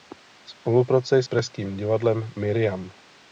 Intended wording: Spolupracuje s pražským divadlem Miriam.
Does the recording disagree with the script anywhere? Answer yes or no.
no